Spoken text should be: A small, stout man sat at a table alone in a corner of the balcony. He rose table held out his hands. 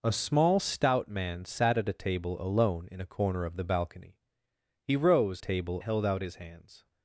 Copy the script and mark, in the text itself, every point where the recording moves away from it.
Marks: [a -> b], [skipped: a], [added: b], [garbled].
A small, stout man sat at a table alone in a corner of the balcony. He rose table held out his hands.